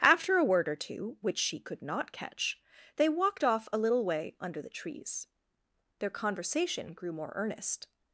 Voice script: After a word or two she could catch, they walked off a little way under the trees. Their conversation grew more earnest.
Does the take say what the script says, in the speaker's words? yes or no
no